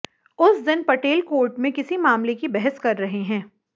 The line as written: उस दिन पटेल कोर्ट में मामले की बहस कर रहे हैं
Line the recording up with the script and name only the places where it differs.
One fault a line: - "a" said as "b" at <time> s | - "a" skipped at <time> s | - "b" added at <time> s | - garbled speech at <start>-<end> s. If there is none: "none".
- "किसी" added at 1.7 s